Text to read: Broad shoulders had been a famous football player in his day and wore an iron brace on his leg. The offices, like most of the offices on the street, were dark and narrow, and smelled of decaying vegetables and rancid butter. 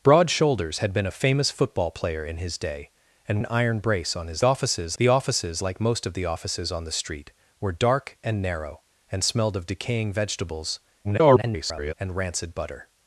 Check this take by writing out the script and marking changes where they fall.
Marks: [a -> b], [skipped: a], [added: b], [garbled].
Broad shoulders had been a famous football player in his day and [skipped: wore] an iron brace on his [leg. -> offices] The offices, like most of the offices on the street, were dark and narrow, and smelled of decaying vegetables [garbled] and rancid butter.